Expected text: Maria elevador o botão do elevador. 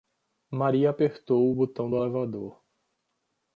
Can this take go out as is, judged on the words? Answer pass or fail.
fail